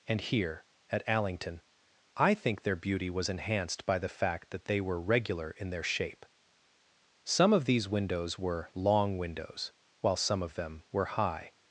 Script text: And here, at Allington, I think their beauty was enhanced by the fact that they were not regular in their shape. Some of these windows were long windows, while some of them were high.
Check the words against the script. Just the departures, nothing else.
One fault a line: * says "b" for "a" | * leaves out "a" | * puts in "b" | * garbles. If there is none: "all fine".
* leaves out "not"